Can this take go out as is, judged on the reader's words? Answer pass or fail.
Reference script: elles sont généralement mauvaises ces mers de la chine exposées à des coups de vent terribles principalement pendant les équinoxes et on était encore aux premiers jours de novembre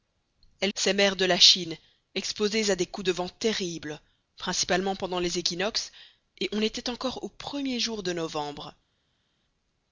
fail